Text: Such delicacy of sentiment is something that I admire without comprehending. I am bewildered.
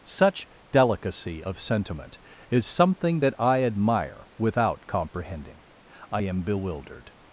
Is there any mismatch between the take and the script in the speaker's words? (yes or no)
no